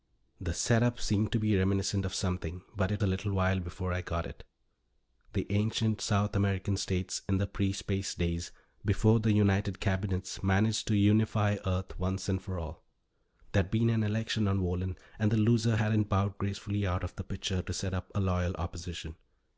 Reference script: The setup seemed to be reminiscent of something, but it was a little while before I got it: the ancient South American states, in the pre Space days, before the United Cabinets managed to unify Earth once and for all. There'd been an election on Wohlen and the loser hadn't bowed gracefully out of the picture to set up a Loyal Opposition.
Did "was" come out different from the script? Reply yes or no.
yes